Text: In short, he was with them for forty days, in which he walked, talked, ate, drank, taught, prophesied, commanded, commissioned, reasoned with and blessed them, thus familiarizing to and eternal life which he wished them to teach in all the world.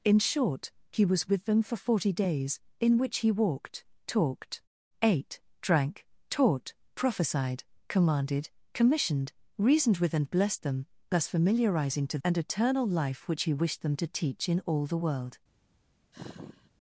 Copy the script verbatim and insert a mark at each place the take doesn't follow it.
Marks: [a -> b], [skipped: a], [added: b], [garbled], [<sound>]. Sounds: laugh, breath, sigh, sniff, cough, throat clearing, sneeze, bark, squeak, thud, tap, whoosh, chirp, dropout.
In short, he was with them for forty days, in which he walked, talked, ate, drank, taught, prophesied, commanded, commissioned, reasoned with and blessed them, thus familiarizing to and eternal life which he wished them to teach in all the world. [sigh]